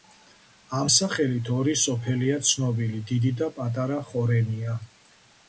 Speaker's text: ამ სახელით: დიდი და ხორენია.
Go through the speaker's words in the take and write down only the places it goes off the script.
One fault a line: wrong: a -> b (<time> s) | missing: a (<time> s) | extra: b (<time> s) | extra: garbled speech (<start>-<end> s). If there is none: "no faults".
extra: ორი სოფელია ცნობილი (1.6 s)
extra: პატარა (3.6 s)